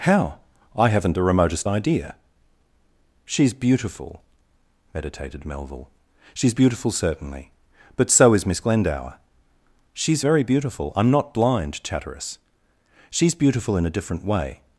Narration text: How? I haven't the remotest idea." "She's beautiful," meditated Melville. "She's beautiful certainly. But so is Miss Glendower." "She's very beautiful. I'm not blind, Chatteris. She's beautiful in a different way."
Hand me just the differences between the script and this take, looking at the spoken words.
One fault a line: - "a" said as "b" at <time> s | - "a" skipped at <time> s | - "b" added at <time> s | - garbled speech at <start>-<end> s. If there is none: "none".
none